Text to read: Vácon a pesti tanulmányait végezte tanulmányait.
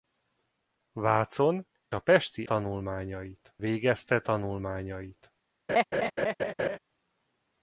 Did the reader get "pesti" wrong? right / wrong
right